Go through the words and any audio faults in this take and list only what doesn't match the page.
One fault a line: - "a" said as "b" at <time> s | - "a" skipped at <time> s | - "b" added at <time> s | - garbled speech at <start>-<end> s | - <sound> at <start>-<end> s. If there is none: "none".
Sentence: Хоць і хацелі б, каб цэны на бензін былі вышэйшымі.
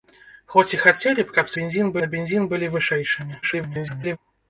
- "цэны" said as "бензін" at 1.6 s
- garbled speech at 3.4-4.2 s